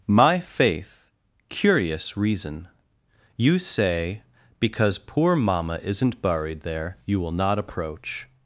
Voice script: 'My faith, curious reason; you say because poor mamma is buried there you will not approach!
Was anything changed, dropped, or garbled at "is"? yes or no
yes